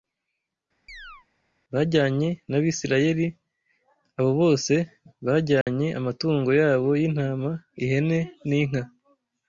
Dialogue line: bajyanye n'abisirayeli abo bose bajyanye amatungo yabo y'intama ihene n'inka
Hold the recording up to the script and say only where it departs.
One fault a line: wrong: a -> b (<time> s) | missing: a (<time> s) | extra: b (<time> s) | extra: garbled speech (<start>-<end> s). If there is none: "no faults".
no faults